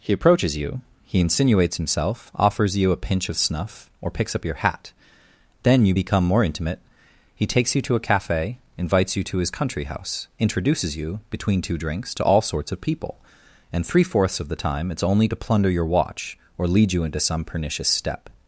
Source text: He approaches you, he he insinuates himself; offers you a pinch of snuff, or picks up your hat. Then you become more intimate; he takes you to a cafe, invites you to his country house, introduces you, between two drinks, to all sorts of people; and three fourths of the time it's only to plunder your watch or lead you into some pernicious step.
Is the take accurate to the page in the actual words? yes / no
no